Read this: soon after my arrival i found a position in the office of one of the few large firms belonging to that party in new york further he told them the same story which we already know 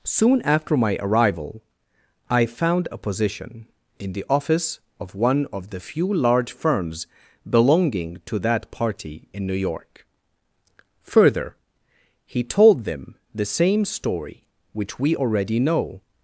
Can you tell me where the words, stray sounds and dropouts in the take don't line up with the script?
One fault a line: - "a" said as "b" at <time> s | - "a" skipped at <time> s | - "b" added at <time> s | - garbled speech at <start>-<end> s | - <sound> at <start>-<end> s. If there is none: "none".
none